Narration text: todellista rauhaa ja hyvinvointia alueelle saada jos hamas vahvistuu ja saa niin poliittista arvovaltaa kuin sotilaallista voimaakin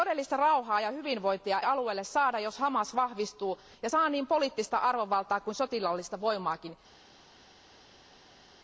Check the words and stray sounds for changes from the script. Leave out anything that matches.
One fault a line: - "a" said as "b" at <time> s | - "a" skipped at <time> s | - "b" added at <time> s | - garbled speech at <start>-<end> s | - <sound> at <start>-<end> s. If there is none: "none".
none